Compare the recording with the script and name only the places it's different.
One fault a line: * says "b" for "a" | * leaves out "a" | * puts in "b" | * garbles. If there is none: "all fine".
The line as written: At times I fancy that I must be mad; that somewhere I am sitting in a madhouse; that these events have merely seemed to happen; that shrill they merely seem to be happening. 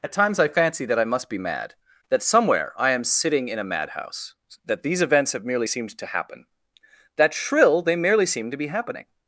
all fine